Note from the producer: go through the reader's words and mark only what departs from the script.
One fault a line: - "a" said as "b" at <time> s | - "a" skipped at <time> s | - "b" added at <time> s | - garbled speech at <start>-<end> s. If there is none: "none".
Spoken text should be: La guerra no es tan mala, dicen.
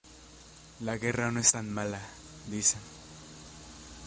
none